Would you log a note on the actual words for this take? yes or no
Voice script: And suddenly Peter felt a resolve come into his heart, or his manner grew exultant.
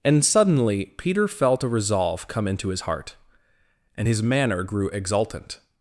yes